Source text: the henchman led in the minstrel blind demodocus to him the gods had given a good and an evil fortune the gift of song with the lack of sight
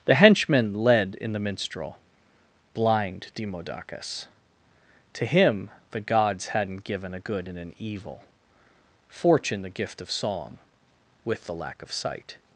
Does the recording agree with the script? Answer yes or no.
no